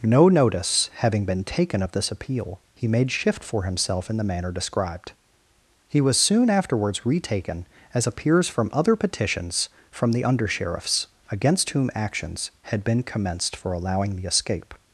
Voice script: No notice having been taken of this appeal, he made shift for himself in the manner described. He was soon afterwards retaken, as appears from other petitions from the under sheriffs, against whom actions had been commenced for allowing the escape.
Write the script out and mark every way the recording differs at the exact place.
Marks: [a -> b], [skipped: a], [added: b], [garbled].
No notice having been taken of this appeal, he made shift for himself in the manner described. He was soon afterwards retaken, as appears from other petitions from the under sheriffs, against whom actions had been commenced for allowing the escape.